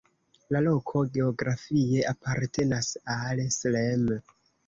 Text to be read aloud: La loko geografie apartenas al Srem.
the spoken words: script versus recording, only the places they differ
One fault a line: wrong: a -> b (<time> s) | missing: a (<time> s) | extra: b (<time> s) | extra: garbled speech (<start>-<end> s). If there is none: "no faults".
no faults